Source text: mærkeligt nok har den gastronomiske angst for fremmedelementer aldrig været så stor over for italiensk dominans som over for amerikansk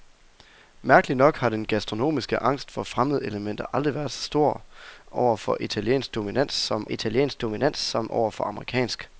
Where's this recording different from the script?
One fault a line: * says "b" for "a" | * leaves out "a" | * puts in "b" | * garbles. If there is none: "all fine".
* puts in "italiensk dominans som"